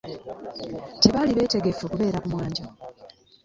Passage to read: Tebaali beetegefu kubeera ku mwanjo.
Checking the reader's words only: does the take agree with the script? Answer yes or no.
yes